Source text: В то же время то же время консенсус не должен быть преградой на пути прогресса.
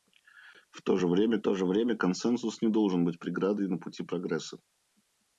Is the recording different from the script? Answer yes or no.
no